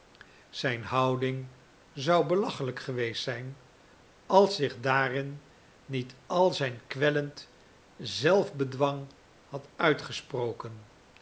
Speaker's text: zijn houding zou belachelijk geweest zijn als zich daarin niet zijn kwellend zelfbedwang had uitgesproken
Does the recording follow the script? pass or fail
fail